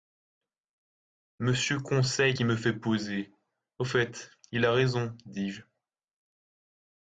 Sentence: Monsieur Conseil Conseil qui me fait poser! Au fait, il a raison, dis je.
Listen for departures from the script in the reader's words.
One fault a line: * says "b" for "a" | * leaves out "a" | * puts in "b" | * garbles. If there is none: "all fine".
* leaves out "Conseil"